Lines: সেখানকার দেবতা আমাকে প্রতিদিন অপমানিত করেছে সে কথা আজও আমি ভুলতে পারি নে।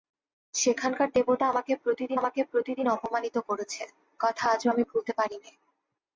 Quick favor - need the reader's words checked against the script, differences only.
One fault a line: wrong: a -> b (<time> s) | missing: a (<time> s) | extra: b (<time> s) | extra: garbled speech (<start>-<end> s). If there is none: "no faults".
extra: আমাকে প্রতিদিন (2.2 s)
missing: সে (3.8 s)